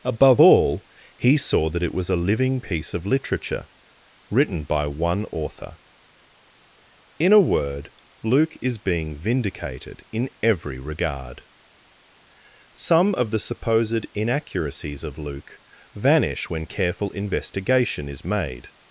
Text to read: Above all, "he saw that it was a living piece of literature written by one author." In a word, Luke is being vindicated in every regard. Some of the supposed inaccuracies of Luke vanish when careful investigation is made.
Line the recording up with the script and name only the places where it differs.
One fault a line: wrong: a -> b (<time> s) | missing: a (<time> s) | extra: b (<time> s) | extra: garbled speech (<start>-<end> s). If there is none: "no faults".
no faults